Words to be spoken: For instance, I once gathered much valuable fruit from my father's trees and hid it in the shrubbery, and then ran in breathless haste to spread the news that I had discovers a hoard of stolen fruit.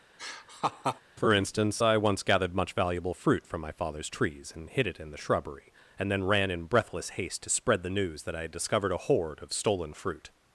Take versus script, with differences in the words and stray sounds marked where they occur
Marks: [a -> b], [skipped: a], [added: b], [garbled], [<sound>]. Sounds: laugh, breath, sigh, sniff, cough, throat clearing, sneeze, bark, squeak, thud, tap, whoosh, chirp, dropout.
[laugh] For instance, I once gathered much valuable fruit from my father's trees and hid it in the shrubbery, and then ran in breathless haste to spread the news that I had [discovers -> discovered] a hoard of stolen fruit.